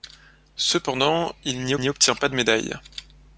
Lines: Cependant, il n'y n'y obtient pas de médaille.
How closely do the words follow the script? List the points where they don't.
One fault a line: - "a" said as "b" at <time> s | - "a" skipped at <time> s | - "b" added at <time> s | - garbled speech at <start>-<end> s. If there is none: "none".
none